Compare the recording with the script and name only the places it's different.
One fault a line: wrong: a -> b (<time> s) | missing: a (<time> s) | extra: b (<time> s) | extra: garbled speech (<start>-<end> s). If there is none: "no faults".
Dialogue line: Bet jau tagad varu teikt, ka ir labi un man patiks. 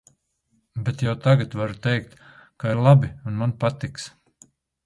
no faults